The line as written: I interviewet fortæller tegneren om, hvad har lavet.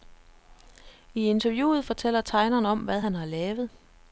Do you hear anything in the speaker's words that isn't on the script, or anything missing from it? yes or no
yes